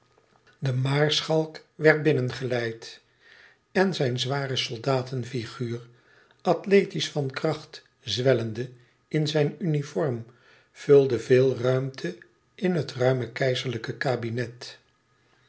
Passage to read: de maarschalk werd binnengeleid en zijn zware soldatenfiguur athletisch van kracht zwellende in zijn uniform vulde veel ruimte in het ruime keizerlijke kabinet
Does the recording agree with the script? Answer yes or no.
yes